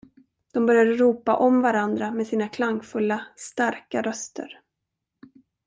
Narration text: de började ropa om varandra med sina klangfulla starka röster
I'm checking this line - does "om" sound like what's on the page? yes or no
yes